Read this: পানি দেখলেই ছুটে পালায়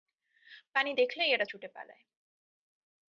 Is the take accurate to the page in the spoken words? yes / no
no